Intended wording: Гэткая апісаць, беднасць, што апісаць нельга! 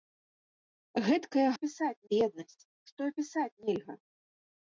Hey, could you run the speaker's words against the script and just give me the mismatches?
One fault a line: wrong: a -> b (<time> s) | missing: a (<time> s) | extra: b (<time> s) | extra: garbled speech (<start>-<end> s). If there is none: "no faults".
no faults